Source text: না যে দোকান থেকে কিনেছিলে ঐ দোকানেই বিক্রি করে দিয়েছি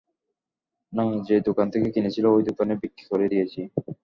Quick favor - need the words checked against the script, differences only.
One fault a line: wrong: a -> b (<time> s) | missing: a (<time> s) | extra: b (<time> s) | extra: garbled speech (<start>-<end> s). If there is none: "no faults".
no faults